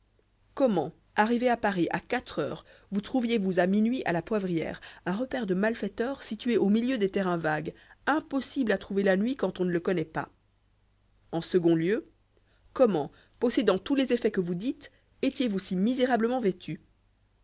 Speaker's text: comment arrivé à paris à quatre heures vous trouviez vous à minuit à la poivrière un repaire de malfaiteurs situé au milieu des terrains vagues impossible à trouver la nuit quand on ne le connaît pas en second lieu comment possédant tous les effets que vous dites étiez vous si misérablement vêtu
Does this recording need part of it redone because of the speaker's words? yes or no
no